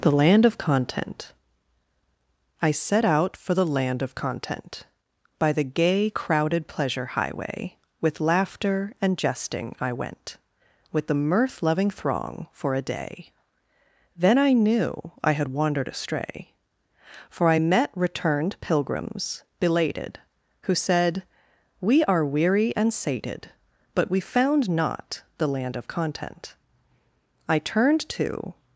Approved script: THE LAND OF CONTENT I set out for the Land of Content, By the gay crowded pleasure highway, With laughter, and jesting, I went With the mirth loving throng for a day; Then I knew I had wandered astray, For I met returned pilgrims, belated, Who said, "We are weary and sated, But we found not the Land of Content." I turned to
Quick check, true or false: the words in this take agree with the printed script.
true